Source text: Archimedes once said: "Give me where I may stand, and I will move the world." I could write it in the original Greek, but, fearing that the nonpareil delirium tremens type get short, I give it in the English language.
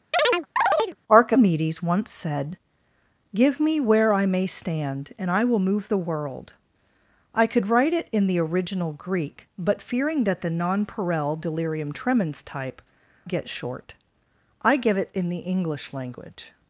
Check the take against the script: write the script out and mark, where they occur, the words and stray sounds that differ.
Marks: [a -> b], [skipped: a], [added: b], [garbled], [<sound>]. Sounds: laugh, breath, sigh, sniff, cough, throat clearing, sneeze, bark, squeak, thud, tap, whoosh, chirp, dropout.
[chirp] Archimedes once said: "Give me where I may stand, and I will move the world." I could write it in the original Greek, but, fearing that the nonpareil delirium tremens type get short, I give it in the English language.